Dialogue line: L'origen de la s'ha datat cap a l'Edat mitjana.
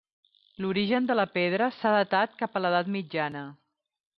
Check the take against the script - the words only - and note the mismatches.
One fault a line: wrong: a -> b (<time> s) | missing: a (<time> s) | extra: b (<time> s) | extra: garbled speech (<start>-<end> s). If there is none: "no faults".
extra: pedra (1.4 s)